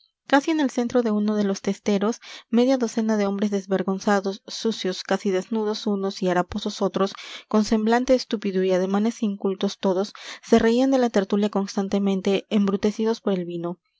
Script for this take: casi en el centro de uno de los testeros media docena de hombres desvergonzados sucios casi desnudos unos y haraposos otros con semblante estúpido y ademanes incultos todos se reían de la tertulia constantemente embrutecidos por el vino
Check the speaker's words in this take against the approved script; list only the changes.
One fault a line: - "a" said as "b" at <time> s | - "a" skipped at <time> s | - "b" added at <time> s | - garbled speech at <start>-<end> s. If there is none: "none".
none